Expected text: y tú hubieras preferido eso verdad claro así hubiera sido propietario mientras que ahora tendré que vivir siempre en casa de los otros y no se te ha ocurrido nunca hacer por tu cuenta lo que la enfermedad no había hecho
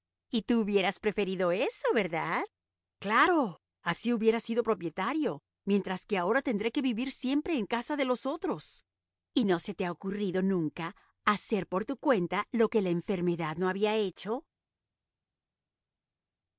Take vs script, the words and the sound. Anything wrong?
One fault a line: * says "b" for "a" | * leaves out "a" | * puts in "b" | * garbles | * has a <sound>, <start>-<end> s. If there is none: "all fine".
all fine